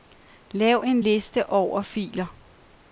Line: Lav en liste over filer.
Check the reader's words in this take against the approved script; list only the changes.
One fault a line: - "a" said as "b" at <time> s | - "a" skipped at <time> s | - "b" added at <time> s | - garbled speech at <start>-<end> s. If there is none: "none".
none